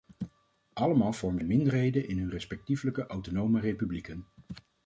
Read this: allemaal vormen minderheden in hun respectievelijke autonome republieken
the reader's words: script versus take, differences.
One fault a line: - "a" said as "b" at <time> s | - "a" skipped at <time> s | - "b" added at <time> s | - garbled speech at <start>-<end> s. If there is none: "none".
none